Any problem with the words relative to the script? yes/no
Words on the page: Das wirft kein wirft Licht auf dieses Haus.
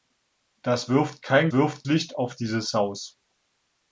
no